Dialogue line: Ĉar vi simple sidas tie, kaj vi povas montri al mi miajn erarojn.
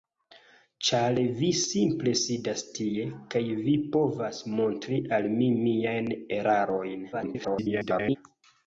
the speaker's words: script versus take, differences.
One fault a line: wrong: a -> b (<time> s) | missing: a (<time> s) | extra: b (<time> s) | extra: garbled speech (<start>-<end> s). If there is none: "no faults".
extra: garbled speech (7.1-8.2 s)